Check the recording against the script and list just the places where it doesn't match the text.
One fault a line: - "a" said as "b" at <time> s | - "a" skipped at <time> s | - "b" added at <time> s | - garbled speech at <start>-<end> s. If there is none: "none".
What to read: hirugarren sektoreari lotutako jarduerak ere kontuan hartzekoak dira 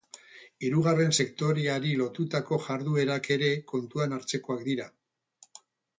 none